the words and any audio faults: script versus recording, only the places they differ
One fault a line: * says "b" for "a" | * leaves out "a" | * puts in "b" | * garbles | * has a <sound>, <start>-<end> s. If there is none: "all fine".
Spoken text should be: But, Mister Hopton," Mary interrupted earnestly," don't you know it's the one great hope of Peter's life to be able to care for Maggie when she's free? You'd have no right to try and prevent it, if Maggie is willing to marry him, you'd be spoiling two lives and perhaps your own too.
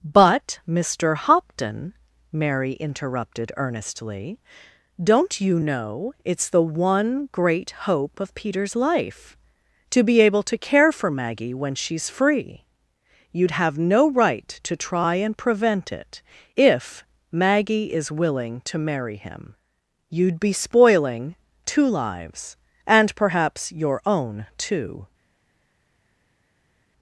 all fine